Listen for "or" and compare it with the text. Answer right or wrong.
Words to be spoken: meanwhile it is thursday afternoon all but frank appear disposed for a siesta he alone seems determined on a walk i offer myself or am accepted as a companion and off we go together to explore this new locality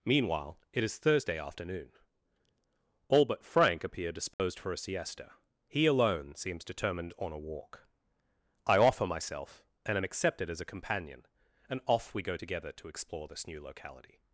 wrong